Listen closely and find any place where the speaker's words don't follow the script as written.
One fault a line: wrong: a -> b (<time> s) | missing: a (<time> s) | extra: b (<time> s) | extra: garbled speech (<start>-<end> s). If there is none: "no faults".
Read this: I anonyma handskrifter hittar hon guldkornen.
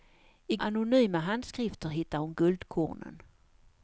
no faults